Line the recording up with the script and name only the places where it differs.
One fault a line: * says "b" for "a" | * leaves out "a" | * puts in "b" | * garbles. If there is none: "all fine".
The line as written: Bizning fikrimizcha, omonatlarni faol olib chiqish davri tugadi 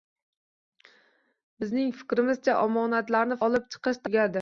* leaves out "faol"
* leaves out "davri"